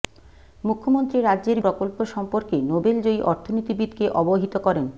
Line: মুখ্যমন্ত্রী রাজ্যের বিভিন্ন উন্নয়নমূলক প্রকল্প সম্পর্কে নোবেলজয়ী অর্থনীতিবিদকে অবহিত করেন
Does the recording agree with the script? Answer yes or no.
no